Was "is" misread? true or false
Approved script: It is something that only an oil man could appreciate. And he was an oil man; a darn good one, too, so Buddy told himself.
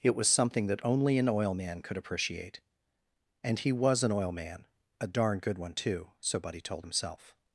true